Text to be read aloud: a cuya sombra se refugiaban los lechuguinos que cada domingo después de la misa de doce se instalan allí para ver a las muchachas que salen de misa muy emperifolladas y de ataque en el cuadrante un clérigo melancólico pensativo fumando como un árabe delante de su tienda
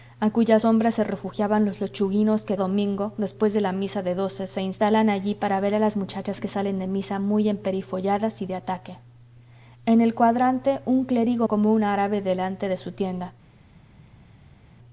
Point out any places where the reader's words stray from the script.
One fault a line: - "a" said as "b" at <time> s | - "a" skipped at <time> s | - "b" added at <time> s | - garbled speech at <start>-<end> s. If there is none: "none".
- "cada" skipped at 2.6 s
- "melancólico pensativo fumando" skipped at 11.5 s